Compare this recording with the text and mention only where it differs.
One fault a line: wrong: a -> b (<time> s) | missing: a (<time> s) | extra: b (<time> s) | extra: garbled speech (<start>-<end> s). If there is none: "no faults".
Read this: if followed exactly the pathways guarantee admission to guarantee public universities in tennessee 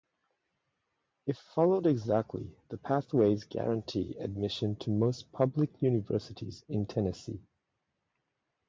wrong: guarantee -> most (4.9 s)